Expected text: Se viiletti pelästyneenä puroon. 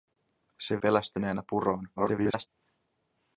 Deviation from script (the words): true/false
true